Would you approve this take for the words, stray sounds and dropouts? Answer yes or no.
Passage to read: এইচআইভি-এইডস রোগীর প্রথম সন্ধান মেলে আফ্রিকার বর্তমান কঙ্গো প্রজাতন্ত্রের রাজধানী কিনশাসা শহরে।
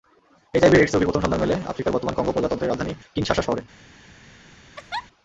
no